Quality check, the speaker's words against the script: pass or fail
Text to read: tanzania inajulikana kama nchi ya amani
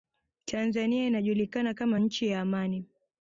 pass